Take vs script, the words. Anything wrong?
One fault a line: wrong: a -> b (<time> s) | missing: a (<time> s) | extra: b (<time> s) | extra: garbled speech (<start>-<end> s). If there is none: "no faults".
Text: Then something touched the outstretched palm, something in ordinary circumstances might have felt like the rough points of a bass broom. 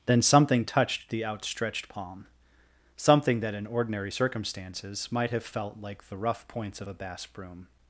extra: that (3.4 s)